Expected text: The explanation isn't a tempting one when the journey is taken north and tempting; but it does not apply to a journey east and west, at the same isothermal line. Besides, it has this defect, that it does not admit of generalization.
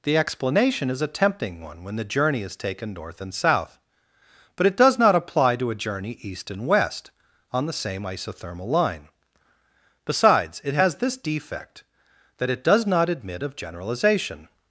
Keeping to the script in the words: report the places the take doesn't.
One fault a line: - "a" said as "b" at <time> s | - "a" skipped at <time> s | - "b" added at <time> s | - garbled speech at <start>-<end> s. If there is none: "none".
- "isn't" said as "is" at 0.9 s
- "tempting" said as "south" at 3.3 s
- "at" said as "on" at 7.5 s